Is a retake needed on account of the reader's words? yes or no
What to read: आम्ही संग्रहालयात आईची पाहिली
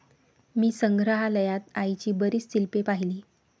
yes